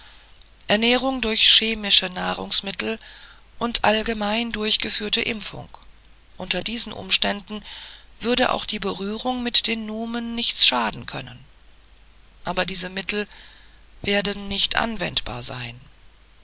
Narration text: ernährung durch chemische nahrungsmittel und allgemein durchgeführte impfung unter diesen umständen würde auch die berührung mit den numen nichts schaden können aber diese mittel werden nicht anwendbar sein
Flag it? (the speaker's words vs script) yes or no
no